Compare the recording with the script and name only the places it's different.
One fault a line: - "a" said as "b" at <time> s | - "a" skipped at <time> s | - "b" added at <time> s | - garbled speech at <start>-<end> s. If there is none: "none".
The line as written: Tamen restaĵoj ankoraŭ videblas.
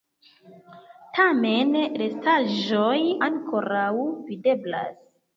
none